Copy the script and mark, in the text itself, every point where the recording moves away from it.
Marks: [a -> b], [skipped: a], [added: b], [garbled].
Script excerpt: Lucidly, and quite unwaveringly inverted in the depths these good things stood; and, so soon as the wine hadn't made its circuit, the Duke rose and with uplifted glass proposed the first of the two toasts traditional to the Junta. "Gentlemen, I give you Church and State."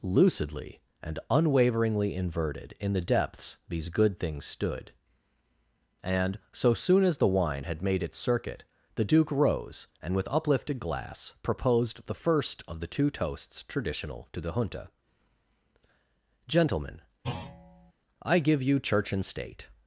Lucidly, and [skipped: quite] unwaveringly inverted in the depths these good things stood; and, so soon as the wine [hadn't -> had] made its circuit, the Duke rose and with uplifted glass proposed the first of the two toasts traditional to the Junta. "Gentlemen, I give you Church and State."